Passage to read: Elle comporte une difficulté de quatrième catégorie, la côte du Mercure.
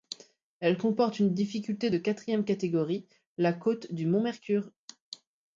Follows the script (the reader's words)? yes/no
no